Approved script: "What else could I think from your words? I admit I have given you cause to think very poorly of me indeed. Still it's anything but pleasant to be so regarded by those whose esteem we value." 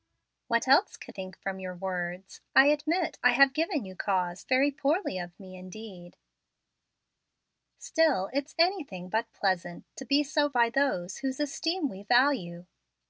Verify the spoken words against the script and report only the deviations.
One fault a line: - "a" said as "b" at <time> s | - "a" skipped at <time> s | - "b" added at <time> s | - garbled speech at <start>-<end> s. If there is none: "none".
- "I" skipped at 1.1 s
- "to think" skipped at 4.4 s
- "regarded" skipped at 10.5 s